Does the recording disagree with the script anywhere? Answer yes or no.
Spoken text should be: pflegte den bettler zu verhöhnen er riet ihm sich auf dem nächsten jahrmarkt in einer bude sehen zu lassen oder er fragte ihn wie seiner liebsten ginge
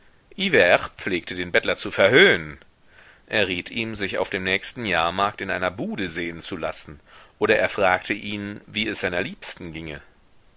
yes